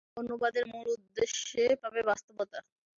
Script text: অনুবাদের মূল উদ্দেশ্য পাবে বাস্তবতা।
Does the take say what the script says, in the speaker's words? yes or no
yes